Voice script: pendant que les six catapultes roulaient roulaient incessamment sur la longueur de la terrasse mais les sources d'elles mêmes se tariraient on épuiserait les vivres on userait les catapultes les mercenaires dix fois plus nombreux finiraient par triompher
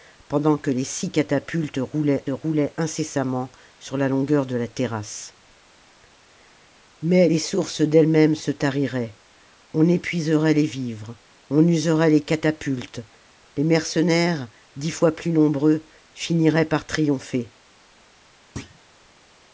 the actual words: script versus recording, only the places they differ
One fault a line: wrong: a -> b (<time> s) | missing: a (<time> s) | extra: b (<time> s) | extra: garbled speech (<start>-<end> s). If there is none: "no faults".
no faults